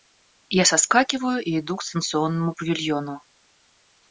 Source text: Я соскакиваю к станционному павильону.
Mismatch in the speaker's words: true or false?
true